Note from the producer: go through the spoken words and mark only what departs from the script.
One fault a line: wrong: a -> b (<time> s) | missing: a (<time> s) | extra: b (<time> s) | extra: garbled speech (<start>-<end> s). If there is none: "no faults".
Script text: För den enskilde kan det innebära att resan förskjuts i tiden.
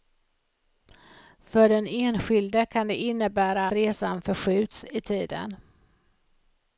missing: att (3.7 s)